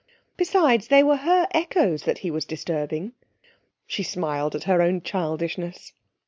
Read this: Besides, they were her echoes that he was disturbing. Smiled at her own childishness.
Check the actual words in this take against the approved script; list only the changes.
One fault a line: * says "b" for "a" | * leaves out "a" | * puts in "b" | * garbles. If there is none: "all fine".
* puts in "She"